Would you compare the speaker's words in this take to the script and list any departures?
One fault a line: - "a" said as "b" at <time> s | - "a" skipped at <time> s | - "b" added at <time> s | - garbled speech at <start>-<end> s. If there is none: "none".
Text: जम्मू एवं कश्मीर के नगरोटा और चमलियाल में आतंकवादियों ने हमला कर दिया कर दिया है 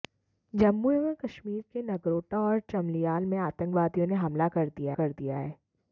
none